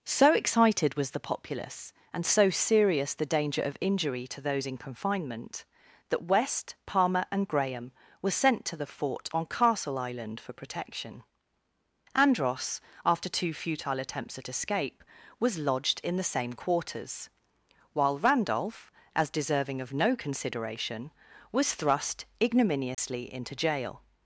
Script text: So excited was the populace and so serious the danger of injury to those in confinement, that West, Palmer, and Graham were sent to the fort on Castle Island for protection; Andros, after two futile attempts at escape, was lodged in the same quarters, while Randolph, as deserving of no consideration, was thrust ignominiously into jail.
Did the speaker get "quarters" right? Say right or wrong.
right